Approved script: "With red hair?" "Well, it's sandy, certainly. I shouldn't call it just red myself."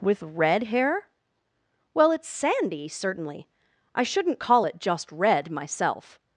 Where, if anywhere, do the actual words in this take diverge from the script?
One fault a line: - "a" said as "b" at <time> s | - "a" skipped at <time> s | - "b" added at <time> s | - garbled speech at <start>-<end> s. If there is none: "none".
none